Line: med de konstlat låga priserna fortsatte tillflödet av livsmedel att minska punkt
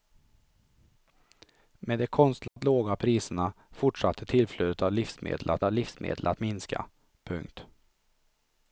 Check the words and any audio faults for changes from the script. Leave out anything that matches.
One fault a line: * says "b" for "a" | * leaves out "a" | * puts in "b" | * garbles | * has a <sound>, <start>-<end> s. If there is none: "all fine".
* has a dropout, 2.5-2.6 s
* puts in "av livsmedel att"